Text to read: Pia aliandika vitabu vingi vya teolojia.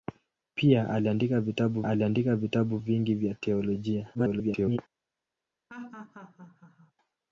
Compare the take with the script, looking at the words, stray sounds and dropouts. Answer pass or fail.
fail